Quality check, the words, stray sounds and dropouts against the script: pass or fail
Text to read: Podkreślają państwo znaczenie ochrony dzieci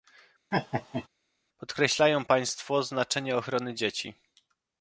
fail